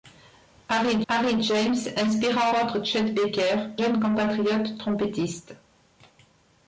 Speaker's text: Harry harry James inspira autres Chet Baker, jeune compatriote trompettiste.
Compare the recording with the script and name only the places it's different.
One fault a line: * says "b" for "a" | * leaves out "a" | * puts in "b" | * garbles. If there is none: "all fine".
all fine